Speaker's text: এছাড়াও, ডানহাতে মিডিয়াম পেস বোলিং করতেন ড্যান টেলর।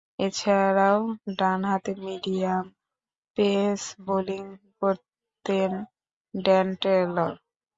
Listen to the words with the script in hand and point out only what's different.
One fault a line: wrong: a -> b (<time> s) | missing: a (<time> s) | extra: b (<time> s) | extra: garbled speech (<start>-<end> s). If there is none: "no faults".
no faults